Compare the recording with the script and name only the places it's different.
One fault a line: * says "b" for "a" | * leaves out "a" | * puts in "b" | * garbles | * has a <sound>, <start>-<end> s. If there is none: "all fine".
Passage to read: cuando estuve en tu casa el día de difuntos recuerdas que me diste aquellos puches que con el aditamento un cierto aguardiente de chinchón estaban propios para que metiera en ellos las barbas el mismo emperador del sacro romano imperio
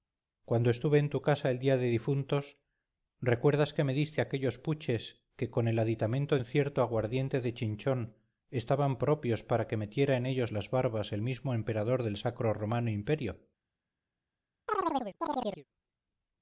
* has a chirp, 14.7-15.7 s